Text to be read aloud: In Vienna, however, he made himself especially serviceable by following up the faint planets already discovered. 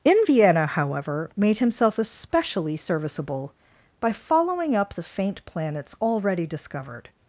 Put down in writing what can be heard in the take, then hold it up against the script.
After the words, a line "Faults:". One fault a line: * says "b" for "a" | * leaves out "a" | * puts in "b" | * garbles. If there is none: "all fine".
In Vienna, however, made himself especially serviceable by following up the faint planets already discovered.
Faults:
* leaves out "he"